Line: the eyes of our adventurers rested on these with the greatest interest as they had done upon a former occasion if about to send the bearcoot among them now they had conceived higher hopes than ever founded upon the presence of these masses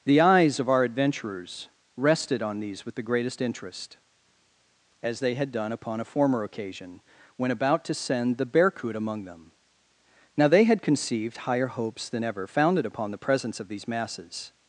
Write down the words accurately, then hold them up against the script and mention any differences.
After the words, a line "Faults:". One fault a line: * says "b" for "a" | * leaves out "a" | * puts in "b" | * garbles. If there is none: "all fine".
the eyes of our adventurers rested on these with the greatest interest as they had done upon a former occasion when about to send the bearcoot among them now they had conceived higher hopes than ever founded upon the presence of these masses
Faults:
* says "when" for "if"